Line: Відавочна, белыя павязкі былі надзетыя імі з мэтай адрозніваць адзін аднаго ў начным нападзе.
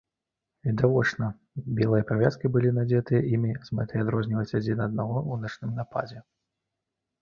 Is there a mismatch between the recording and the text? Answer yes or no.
no